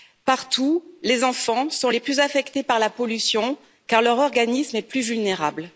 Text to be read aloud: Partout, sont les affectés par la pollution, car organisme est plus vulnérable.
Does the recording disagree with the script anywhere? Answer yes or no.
yes